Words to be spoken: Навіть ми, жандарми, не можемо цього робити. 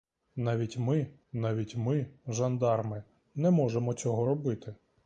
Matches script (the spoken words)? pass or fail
fail